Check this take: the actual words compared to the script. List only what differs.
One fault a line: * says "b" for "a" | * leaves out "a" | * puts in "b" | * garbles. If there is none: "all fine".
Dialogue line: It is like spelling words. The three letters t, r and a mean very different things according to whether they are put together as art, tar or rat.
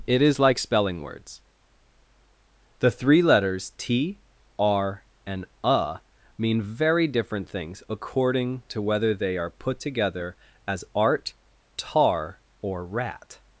all fine